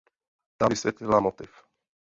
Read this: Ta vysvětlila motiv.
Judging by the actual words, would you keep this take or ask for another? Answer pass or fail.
pass